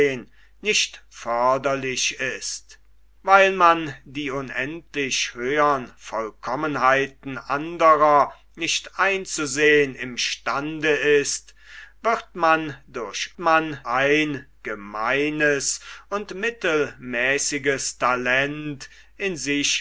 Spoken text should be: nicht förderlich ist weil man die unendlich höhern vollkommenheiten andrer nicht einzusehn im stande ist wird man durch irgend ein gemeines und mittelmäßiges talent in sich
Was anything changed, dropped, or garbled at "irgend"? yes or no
yes